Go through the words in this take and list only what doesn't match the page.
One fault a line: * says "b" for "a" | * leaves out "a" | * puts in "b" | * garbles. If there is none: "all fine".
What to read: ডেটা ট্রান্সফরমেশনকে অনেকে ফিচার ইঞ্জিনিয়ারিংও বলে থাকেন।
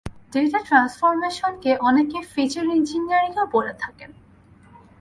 all fine